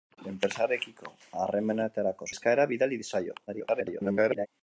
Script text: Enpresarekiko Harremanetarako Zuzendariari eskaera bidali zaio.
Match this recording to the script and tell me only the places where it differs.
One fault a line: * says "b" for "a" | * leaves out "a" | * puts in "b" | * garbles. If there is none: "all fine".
* leaves out "Zuzendariari"
* garbles